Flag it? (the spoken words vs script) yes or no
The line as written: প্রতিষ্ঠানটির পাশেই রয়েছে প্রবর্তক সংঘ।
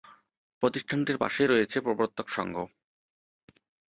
no